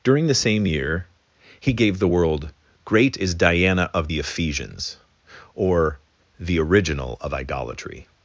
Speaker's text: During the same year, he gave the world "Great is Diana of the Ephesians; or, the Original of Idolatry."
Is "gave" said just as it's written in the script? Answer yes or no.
yes